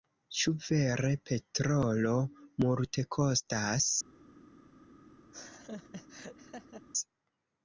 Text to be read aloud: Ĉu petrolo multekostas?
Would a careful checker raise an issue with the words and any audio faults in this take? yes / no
yes